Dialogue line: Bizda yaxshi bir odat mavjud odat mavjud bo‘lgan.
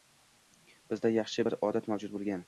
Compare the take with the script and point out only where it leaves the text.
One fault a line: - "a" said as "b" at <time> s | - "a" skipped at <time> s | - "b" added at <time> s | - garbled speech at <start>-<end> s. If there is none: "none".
- "odat mavjud" skipped at 2.1 s